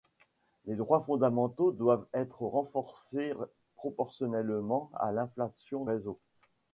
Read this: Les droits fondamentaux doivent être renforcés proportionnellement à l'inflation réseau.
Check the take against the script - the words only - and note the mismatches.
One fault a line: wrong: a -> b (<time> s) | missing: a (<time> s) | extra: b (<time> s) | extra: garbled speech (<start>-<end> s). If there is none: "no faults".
no faults